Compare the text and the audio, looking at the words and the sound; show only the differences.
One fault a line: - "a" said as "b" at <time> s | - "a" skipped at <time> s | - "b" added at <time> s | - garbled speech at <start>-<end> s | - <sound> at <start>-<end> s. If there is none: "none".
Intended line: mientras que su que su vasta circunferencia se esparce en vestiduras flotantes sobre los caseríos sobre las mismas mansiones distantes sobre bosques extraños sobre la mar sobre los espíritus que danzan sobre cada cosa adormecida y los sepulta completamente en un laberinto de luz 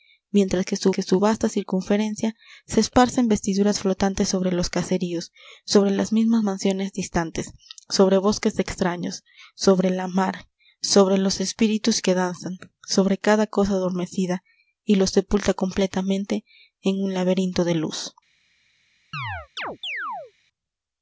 - chirp at 19.1-20.3 s